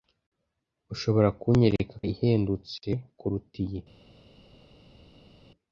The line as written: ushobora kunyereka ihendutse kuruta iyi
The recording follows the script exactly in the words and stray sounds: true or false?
true